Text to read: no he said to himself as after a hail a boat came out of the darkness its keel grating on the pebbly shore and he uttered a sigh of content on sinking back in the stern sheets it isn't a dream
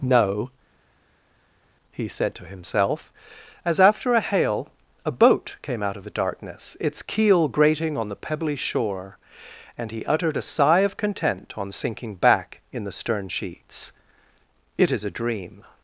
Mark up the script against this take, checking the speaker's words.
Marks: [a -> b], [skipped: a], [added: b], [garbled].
no he said to himself as after a hail a boat came out of the darkness its keel grating on the pebbly shore and he uttered a sigh of content on sinking back in the stern sheets it [isn't -> is] a dream